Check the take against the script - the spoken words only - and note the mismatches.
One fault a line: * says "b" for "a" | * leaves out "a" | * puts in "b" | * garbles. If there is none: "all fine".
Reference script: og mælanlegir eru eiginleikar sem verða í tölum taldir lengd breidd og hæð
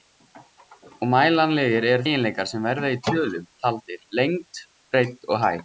all fine